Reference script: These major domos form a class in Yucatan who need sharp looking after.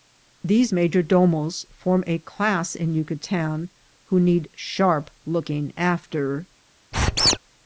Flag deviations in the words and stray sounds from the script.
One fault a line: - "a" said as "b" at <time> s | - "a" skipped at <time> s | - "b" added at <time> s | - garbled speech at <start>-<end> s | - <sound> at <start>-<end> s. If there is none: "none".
- squeak at 6.9-7.4 s